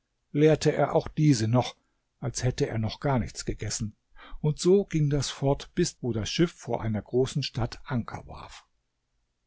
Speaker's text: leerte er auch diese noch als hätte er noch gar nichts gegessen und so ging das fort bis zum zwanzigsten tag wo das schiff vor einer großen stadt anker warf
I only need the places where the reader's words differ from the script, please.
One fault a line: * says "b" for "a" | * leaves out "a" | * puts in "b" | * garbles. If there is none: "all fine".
* leaves out "zum zwanzigsten tag"